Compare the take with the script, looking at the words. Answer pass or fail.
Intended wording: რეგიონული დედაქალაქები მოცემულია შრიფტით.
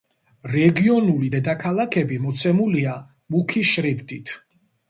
fail